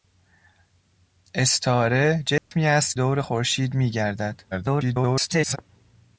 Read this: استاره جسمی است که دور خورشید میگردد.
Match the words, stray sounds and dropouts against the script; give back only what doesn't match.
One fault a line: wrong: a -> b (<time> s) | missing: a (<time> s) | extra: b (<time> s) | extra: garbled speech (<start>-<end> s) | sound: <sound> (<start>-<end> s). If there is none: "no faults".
sound: dropout (2.4-2.5 s)
missing: که (3.0 s)
extra: garbled speech (4.5-5.6 s)